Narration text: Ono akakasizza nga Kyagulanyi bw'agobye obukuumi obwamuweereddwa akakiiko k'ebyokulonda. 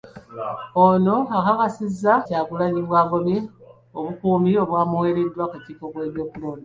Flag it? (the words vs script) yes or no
yes